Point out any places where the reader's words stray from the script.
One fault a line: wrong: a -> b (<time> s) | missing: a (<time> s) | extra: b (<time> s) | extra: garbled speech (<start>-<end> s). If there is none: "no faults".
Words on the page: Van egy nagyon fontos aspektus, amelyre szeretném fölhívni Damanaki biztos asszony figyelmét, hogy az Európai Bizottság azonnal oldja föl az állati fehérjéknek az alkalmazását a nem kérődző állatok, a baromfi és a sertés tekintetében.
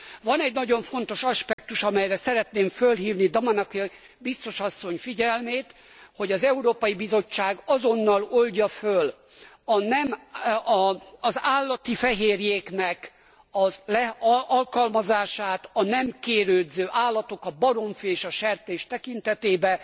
no faults